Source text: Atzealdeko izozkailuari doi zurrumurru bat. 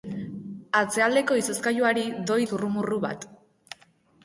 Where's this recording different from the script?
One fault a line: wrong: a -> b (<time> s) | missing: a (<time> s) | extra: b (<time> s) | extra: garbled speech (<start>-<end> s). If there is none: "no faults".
no faults